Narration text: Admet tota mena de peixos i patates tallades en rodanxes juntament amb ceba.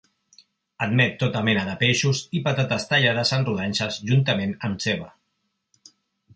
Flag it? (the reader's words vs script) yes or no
no